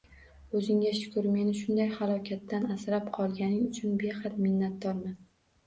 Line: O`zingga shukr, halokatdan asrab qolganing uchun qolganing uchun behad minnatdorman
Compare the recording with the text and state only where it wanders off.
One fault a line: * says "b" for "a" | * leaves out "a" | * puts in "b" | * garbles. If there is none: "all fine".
* puts in "meni shunday"
* leaves out "qolganing uchun"